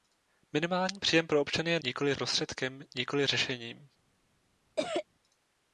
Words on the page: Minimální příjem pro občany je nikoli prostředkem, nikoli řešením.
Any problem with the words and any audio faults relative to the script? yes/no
yes